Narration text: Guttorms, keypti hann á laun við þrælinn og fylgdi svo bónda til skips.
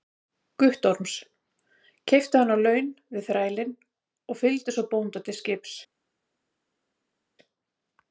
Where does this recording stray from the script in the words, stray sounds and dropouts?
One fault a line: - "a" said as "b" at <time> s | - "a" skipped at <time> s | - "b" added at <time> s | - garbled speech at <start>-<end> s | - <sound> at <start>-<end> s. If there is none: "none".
none